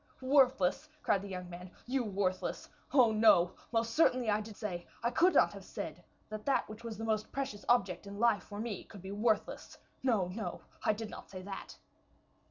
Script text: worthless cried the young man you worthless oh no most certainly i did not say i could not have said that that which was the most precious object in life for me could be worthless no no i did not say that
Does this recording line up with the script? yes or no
no